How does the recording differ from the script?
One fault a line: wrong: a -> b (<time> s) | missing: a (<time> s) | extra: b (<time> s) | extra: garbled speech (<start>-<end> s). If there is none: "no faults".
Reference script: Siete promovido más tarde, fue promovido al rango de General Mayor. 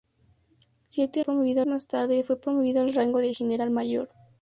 no faults